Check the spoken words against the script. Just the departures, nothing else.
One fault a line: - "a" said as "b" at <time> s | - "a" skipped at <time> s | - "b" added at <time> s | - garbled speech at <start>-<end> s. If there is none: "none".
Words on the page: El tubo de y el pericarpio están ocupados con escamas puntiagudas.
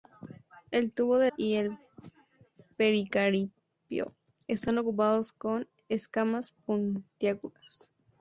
none